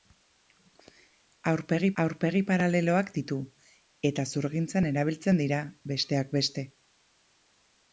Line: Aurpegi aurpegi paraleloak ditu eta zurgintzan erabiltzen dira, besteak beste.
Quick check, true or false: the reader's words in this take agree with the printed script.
true